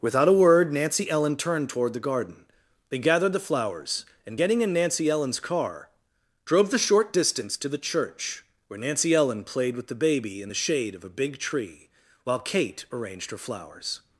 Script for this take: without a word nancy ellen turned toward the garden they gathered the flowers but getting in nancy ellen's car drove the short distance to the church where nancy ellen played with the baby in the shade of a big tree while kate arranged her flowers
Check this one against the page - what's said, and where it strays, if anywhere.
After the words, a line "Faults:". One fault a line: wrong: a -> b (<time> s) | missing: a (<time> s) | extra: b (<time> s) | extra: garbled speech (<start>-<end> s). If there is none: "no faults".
without a word nancy ellen turned toward the garden they gathered the flowers and getting in nancy ellen's car drove the short distance to the church where nancy ellen played with the baby in the shade of a big tree while kate arranged her flowers
Faults:
wrong: but -> and (4.2 s)